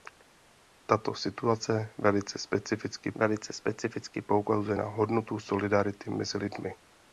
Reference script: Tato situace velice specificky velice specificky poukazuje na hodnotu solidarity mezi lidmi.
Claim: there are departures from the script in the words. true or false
false